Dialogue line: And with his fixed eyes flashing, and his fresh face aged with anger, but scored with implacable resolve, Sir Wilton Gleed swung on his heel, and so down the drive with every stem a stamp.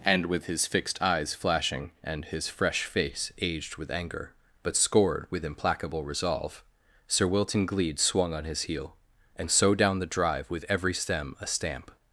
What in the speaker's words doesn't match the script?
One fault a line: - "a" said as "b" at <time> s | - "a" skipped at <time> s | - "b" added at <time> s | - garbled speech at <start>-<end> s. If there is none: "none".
none